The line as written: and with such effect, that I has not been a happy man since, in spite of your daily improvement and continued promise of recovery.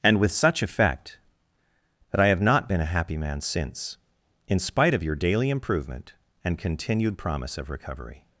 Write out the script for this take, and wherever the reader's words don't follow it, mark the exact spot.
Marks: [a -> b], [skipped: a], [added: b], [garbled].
and with such effect, that I [has -> have] not been a happy man since, in spite of your daily improvement and continued promise of recovery.